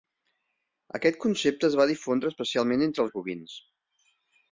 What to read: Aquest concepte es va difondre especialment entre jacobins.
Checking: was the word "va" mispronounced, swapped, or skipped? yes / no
no